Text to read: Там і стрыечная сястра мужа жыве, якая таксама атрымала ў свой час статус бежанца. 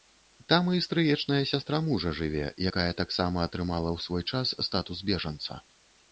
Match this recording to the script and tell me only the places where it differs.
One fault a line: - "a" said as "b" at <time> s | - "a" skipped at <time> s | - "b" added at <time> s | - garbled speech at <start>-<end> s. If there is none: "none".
none